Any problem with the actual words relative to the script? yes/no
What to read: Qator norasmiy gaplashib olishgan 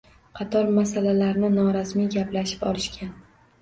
yes